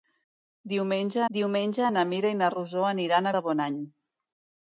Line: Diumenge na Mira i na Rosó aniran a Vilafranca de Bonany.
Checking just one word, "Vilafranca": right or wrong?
wrong